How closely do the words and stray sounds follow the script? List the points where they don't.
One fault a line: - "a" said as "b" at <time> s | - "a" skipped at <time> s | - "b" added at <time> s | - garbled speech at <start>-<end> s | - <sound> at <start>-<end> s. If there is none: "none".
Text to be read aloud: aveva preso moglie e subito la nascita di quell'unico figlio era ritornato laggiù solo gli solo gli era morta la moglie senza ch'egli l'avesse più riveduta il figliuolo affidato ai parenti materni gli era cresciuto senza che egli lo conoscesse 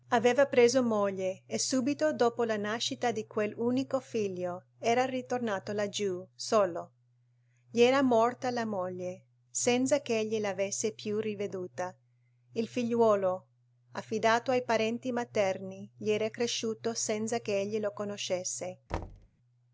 - "dopo" added at 2.1 s
- "solo gli" skipped at 7.8 s
- thud at 18.9-19.3 s